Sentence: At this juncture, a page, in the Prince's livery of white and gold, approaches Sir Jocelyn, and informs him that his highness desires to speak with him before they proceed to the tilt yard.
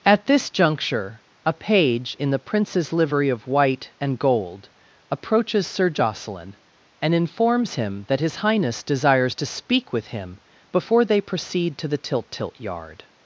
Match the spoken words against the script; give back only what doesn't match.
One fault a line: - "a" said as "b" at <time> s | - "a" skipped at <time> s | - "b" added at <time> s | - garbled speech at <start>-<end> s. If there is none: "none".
- "tilt" added at 12.3 s